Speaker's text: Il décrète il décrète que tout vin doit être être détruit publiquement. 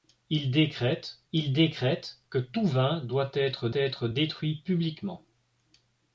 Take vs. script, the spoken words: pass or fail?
pass